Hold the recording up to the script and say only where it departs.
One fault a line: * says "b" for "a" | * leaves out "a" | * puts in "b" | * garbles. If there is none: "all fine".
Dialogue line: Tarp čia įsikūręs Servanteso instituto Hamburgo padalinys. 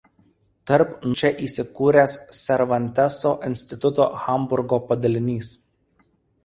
all fine